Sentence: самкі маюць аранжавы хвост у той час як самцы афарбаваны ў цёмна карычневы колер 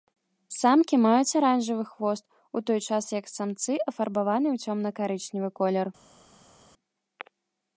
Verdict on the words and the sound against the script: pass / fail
pass